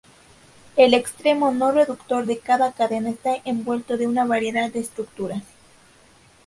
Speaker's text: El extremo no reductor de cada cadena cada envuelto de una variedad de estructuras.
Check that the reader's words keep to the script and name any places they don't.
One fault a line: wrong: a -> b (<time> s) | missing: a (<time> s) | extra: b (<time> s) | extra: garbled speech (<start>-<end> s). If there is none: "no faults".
wrong: cada -> está (3.1 s)